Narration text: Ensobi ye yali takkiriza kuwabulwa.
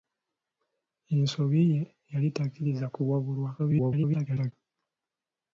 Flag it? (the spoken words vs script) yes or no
yes